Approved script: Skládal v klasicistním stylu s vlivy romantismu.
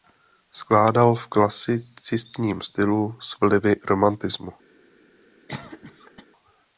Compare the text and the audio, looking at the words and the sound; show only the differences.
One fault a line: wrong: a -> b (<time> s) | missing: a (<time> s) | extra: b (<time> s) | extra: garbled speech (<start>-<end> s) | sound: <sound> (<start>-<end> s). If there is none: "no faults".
sound: cough (5.5-6.3 s)